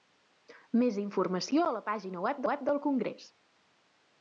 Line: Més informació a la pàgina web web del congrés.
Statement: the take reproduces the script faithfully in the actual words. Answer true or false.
true